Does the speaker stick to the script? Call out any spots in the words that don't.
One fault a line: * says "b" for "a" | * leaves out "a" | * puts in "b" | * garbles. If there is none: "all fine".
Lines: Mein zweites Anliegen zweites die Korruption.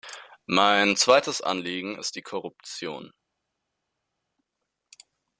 * says "ist" for "zweites"